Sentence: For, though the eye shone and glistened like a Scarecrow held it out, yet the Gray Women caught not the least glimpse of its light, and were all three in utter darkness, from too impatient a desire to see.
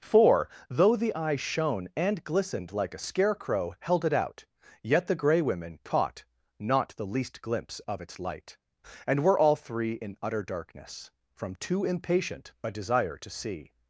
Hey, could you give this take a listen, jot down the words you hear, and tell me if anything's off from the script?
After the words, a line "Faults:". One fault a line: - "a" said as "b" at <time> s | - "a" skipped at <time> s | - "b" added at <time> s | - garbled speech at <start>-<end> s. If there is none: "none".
For, though the eye shone and glistened like a Scarecrow held it out, yet the Gray Women caught not the least glimpse of its light, and were all three in utter darkness, from too impatient a desire to see.
Faults:
none